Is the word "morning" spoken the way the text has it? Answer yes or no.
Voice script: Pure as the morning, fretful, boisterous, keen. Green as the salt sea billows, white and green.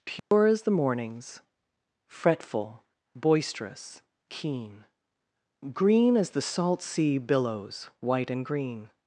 no